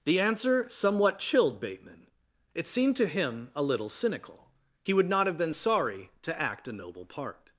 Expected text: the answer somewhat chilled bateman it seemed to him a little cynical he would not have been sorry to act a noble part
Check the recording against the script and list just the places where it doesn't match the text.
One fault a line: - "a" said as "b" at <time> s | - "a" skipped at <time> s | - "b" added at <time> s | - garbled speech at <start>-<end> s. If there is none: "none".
none